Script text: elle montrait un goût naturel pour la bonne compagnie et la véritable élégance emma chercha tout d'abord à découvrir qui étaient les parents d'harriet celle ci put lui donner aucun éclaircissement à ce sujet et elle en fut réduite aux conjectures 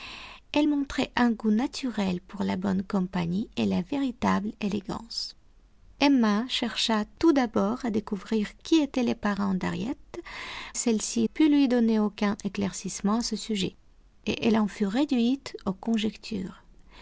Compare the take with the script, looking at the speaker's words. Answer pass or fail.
pass